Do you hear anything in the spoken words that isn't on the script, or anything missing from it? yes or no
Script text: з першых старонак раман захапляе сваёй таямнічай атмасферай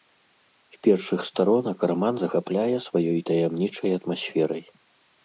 no